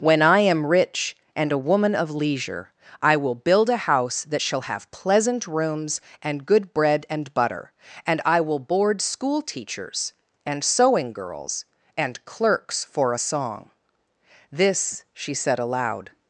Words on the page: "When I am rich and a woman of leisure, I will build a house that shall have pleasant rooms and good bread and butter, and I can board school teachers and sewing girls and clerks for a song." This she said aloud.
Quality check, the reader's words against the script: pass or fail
fail